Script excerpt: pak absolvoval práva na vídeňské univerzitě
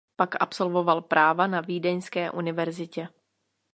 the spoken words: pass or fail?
pass